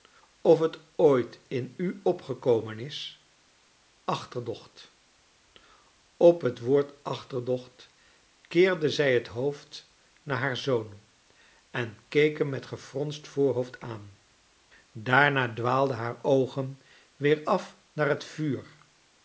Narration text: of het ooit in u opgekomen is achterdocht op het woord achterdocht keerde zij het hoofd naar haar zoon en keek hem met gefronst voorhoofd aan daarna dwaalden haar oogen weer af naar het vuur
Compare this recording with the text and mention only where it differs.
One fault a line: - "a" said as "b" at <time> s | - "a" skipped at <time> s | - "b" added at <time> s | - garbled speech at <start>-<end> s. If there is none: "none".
none